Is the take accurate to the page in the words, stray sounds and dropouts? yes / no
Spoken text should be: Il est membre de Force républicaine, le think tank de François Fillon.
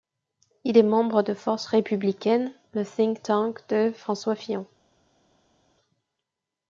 yes